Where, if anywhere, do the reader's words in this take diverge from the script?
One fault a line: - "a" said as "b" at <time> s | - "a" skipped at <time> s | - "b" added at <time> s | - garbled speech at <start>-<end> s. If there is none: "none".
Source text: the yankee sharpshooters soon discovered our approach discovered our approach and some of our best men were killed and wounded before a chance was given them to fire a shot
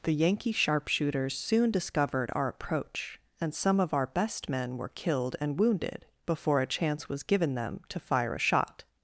- "discovered our approach" skipped at 3.2 s